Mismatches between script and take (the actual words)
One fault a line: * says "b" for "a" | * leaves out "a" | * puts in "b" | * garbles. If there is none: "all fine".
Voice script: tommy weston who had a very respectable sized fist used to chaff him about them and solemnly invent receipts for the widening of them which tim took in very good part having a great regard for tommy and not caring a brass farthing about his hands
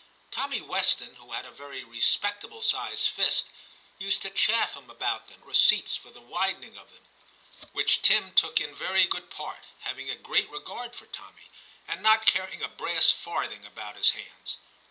* leaves out "and solemnly invent"